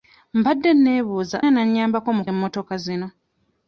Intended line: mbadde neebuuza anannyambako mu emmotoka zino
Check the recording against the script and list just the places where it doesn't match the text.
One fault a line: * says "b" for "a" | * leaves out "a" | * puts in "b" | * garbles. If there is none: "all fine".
all fine